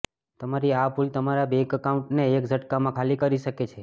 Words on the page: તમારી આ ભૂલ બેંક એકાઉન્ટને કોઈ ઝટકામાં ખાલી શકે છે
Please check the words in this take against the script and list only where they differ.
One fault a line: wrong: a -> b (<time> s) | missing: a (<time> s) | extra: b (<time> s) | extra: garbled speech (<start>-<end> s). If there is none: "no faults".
extra: તમારા (1.1 s)
wrong: કોઈ -> એક (2.3 s)
extra: કરી (3.2 s)